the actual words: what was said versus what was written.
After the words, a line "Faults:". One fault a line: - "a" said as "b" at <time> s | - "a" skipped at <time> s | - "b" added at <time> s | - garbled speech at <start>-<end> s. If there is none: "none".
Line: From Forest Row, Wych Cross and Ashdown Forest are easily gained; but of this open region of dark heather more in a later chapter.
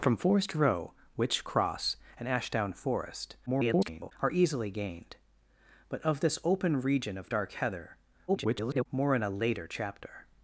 From Forest Row, Wych Cross and Ashdown Forest [garbled] are easily gained; but of this open region of dark heather [garbled] more in a later chapter.
Faults:
- garbled speech at 3.5-4.1 s
- garbled speech at 8.3-8.9 s